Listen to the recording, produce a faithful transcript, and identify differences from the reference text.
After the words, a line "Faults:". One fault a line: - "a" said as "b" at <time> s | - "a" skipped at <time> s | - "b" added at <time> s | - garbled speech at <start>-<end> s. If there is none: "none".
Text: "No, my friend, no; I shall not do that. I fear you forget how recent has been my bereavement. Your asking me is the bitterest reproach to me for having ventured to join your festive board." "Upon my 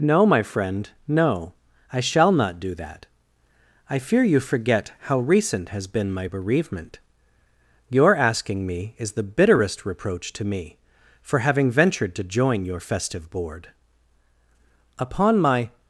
"No, my friend, no; I shall not do that. I fear you forget how recent has been my bereavement. Your asking me is the bitterest reproach to me for having ventured to join your festive board." "Upon my
Faults:
none